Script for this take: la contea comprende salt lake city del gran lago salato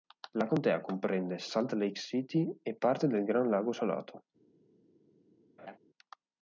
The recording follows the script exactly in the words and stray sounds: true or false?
false